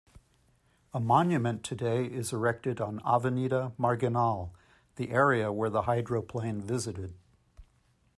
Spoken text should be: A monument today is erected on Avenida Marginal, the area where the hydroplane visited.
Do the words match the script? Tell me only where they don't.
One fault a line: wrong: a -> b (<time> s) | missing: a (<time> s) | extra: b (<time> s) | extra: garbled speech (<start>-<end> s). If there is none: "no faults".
no faults